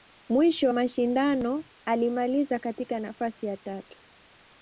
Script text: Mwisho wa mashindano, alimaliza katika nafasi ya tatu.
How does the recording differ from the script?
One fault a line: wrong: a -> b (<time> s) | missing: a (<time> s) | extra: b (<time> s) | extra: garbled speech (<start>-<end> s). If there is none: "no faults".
missing: wa (0.7 s)